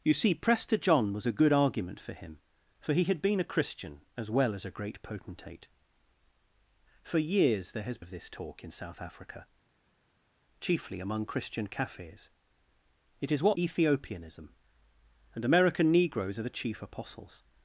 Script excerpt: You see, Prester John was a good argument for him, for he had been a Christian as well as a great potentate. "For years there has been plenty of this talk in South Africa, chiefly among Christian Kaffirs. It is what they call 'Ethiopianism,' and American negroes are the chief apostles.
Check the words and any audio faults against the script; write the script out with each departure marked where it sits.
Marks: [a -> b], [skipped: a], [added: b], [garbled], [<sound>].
You see, Prester John was a good argument for him, for he had been a Christian as well as a great potentate. "For years there has [skipped: been plenty] of this talk in South Africa, chiefly among Christian Kaffirs. It is what [skipped: they call] 'Ethiopianism,' and American negroes are the chief apostles.